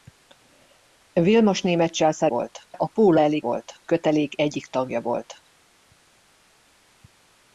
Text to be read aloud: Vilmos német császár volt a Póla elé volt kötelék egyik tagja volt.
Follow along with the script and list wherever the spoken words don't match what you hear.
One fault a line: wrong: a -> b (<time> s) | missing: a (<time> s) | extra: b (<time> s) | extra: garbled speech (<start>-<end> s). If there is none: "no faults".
no faults